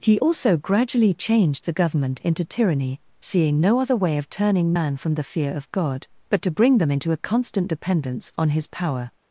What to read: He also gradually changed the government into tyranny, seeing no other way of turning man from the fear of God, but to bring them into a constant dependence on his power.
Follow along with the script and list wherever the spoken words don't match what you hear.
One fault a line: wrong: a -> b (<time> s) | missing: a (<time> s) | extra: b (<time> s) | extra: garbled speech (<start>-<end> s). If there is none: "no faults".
no faults